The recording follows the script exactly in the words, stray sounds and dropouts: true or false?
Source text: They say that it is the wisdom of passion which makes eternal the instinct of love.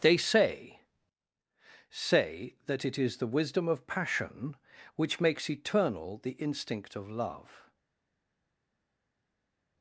false